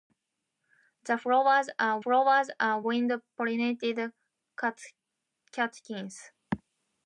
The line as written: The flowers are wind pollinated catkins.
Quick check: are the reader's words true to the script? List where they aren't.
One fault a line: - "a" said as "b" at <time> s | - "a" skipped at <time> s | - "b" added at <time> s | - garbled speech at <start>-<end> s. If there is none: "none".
- "flowers are" added at 2.0 s